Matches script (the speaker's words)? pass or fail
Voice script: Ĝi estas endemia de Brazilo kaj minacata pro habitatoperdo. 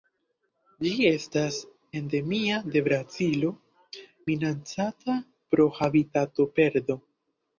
fail